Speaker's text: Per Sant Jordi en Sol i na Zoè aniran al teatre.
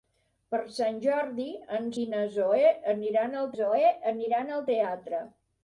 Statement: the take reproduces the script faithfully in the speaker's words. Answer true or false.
false